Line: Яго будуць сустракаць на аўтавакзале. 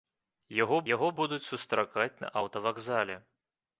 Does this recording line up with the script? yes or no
no